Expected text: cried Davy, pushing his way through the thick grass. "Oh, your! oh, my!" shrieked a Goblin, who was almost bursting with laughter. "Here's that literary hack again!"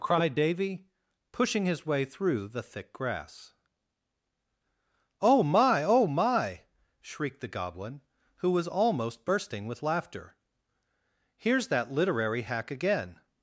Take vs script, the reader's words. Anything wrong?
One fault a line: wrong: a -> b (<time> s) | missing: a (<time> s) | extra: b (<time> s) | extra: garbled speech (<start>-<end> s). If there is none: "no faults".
wrong: your -> my (5.4 s)
wrong: a -> the (7.4 s)